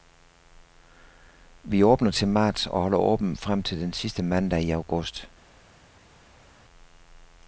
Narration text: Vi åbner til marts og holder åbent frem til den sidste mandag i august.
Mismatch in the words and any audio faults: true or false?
false